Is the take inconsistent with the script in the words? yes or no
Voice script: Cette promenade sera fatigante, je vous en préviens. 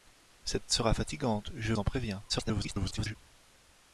yes